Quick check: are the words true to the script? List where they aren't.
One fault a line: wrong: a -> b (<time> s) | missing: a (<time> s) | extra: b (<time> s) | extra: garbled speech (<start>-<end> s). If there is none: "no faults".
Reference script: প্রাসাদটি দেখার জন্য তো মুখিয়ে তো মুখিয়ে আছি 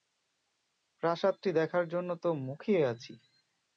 missing: তো মুখিয়ে (2.8 s)